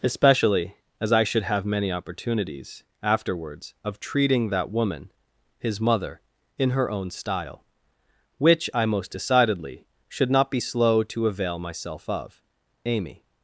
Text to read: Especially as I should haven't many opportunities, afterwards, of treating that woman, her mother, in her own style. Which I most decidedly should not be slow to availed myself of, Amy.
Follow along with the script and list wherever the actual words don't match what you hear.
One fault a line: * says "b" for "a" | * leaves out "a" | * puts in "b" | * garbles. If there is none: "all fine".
* says "have" for "haven't"
* says "his" for "her"
* says "avail" for "availed"